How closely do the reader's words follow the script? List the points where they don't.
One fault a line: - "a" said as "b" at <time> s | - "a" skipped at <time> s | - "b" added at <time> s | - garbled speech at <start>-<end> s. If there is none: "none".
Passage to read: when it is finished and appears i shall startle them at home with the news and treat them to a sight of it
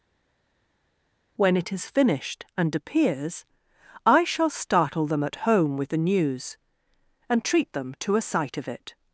none